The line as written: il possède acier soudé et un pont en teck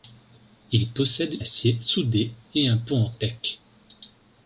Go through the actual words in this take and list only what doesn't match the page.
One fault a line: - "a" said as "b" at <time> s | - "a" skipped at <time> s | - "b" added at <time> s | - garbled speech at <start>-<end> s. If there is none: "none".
none